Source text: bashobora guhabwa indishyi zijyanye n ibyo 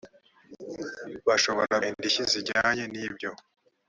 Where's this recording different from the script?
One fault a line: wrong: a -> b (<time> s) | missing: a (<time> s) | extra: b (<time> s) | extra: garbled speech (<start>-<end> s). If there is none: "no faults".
missing: guhabwa (1.8 s)